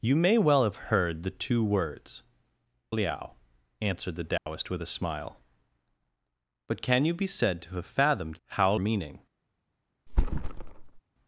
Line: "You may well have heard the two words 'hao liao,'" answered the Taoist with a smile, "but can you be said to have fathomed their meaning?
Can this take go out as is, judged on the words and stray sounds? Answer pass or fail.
fail